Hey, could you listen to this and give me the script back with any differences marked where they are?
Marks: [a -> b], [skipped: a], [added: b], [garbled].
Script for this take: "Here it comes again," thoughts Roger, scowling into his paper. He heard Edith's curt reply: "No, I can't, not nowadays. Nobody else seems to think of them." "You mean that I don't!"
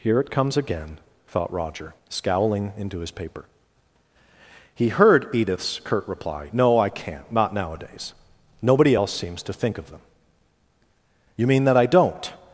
"Here it comes again," [thoughts -> thought] Roger, scowling into his paper. He heard Edith's curt reply: "No, I can't, not nowadays. Nobody else seems to think of them." "You mean that I don't!"